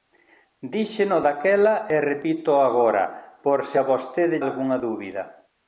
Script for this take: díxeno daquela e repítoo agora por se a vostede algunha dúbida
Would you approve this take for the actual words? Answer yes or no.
yes